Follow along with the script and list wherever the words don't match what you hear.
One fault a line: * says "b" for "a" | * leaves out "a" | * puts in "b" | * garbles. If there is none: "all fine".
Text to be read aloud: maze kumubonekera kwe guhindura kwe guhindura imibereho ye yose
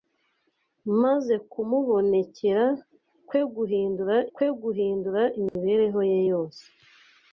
all fine